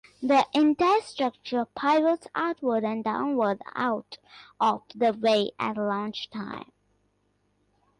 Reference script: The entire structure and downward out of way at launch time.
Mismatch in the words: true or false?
true